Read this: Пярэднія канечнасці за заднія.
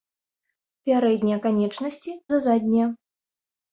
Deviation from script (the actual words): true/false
false